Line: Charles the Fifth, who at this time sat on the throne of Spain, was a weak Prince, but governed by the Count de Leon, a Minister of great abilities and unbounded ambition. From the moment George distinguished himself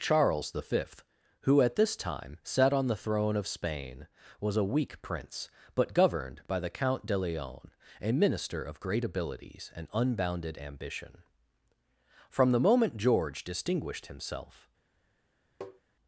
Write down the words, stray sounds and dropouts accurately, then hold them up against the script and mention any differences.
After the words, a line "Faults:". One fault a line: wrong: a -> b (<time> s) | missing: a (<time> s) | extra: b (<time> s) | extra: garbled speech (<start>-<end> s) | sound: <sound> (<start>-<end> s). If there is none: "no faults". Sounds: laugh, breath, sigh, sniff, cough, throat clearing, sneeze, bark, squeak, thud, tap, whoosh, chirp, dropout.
Charles the Fifth, who at this time sat on the throne of Spain, was a weak Prince, but governed by the Count de Leon, a Minister of great abilities and unbounded ambition. From the moment George distinguished himself
Faults:
sound: tap (15.6-15.8 s)